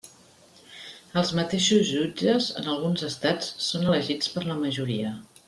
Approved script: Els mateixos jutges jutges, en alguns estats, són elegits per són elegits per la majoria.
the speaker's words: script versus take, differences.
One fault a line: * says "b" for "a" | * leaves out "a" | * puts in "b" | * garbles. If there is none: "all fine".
* leaves out "jutges"
* leaves out "són elegits per"